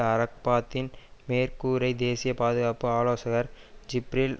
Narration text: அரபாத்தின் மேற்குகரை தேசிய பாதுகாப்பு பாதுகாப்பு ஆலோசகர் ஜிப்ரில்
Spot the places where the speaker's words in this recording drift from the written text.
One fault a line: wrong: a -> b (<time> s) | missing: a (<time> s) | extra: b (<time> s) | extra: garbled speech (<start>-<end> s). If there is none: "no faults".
missing: பாதுகாப்பு (2.9 s)